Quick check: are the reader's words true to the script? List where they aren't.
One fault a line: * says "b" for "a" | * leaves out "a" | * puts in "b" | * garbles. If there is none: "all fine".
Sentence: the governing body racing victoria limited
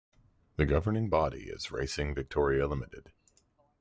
* puts in "is"